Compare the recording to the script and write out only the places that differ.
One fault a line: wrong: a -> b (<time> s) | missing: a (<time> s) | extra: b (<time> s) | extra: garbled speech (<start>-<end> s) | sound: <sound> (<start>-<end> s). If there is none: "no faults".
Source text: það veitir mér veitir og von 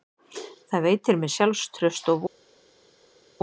wrong: veitir -> sjálfstraust (1.4 s)